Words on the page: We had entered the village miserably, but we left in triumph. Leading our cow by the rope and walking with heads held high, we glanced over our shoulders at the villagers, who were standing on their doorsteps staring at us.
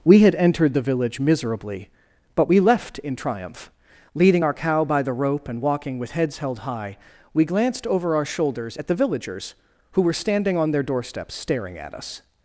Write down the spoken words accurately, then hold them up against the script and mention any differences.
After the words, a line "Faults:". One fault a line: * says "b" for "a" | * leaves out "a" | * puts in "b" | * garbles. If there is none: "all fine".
We had entered the village miserably, but we left in triumph. Leading our cow by the rope and walking with heads held high, we glanced over our shoulders at the villagers, who were standing on their doorsteps staring at us.
Faults:
all fine